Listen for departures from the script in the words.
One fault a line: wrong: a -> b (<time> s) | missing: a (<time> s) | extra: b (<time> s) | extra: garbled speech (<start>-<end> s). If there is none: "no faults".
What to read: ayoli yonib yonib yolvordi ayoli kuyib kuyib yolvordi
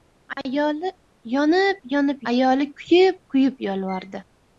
missing: yolvordi (2.2 s)